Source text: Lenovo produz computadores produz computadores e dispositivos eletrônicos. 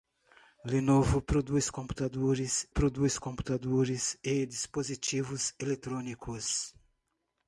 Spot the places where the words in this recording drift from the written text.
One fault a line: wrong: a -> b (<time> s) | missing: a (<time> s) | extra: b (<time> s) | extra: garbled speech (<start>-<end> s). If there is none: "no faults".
no faults